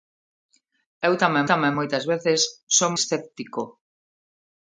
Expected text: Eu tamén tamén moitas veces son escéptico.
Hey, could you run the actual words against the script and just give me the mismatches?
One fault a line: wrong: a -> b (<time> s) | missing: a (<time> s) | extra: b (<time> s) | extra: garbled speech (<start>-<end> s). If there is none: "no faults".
no faults